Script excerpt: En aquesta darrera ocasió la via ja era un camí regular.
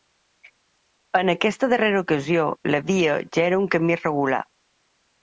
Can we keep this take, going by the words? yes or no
yes